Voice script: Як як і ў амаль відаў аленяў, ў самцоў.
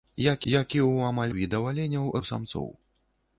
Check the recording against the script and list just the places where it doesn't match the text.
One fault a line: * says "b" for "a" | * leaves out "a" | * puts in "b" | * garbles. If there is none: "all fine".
all fine